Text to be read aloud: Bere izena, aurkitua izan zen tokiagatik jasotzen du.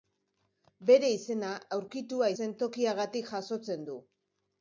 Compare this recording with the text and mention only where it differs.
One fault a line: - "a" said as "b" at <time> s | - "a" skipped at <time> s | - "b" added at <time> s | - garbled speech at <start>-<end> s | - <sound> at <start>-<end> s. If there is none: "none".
- "izan" skipped at 2.3 s